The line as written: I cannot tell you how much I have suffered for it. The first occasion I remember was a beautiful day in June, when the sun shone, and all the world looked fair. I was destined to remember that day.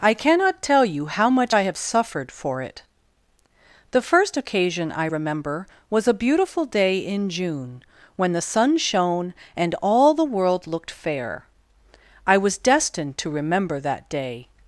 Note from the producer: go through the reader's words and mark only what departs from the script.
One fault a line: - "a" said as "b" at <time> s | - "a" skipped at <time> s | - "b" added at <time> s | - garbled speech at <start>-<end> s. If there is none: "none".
none